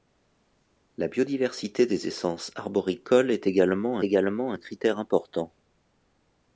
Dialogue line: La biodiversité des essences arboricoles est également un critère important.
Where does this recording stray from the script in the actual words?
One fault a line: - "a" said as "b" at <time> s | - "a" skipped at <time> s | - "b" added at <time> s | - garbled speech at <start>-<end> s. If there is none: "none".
- "également" added at 4.0 s